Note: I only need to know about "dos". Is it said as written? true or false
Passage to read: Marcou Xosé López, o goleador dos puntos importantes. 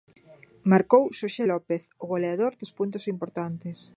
true